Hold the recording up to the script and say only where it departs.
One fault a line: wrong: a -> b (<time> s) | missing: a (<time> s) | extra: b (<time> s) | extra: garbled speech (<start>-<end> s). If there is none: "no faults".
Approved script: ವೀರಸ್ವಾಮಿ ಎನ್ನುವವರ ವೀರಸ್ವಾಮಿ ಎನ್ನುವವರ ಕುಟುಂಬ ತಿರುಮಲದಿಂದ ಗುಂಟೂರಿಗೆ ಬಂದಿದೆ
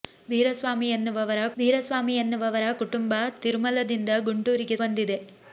no faults